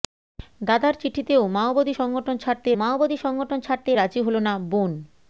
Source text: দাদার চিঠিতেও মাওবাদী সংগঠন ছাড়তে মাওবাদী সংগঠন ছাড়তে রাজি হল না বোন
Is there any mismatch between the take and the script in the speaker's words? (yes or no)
no